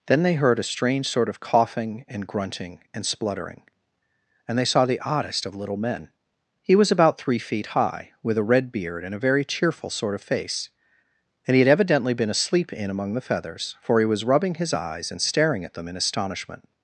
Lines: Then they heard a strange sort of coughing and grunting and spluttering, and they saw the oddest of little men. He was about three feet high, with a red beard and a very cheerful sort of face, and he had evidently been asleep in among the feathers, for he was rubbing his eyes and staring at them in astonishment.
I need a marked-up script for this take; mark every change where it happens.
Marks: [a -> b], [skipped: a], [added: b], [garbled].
Then they heard a strange sort of coughing and grunting and spluttering, and they saw the oddest of little men. He was about three feet high, with a red beard and a very cheerful sort of face, and he had evidently been asleep in among the feathers, for he was rubbing his eyes and staring at them in astonishment.